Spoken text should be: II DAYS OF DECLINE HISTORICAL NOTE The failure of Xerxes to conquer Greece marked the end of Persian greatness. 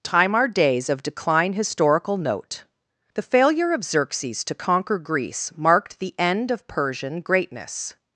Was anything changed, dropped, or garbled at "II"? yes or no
yes